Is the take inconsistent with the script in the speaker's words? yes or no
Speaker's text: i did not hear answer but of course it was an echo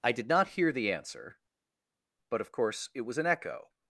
yes